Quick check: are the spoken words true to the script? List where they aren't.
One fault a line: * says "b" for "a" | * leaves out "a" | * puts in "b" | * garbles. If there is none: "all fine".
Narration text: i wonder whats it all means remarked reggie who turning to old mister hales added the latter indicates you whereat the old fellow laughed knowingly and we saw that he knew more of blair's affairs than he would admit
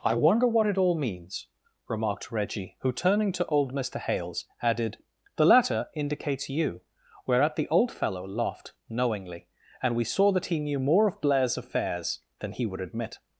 * says "what" for "whats"